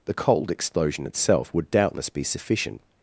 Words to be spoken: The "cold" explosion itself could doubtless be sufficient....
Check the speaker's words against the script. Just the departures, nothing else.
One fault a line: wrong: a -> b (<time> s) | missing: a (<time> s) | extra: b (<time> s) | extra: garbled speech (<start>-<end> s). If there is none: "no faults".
wrong: could -> would (1.5 s)